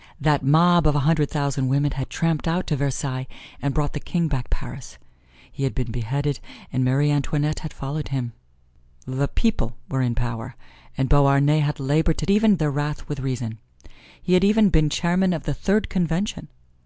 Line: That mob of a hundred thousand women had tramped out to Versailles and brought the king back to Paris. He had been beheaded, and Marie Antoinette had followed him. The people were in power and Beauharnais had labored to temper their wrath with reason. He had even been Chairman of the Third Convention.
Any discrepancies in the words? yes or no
yes